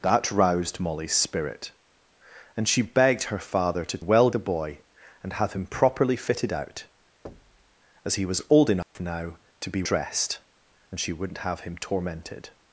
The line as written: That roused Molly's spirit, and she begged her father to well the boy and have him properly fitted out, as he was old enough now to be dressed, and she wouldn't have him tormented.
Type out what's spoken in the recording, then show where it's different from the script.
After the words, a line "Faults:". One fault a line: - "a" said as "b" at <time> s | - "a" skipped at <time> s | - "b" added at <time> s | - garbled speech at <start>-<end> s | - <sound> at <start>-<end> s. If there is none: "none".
That roused Molly's spirit, and she begged her father to well the boy and have him properly fitted out, as he was old enough now to be dressed, and she wouldn't have him tormented.
Faults:
- thud at 7.2-7.7 s
- dropout at 8.8-9.0 s